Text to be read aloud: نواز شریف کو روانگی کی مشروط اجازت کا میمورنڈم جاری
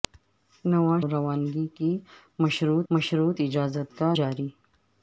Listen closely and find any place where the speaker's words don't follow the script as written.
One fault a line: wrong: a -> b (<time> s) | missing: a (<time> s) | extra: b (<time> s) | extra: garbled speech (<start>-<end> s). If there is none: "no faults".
missing: شریف کو (1.0 s)
extra: مشروط (2.9 s)
missing: میمورنڈم (4.1 s)